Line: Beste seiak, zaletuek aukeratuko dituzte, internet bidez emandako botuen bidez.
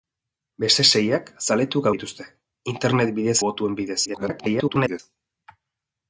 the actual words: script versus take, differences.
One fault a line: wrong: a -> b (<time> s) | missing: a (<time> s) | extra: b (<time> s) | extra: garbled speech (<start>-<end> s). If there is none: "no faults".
missing: aukeratuko (1.9 s)
missing: emandako (3.4 s)
extra: garbled speech (4.0-5.0 s)